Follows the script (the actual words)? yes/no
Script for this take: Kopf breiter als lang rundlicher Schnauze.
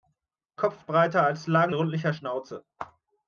yes